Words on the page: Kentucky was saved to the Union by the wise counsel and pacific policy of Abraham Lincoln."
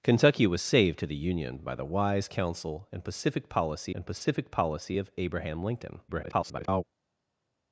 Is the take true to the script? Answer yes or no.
no